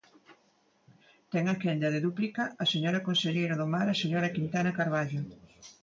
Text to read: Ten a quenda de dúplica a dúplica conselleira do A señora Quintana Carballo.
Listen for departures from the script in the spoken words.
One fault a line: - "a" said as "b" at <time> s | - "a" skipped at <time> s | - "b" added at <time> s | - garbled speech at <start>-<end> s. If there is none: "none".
- "dúplica" said as "señora" at 2.7 s
- "Mar" added at 3.7 s